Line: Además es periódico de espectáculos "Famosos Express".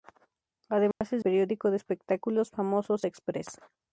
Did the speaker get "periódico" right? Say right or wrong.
right